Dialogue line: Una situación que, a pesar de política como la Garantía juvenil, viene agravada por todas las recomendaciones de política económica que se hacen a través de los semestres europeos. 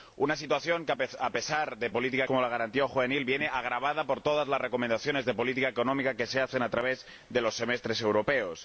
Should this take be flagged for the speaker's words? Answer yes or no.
no